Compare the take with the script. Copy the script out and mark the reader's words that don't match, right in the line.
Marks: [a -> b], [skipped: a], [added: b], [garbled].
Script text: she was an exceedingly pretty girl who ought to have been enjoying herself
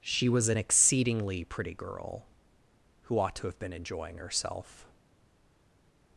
she was an exceedingly pretty girl who ought to have been enjoying herself